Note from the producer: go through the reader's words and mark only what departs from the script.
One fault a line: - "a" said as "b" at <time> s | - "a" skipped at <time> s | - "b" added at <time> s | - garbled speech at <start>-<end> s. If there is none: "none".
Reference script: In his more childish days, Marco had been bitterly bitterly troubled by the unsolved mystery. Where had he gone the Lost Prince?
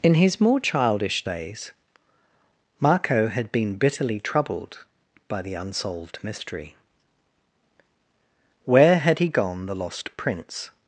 - "bitterly" skipped at 4.2 s